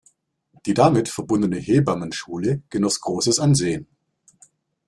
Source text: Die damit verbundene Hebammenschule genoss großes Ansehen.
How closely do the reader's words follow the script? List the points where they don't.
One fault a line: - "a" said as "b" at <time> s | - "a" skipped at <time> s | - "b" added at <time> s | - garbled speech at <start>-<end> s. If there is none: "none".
none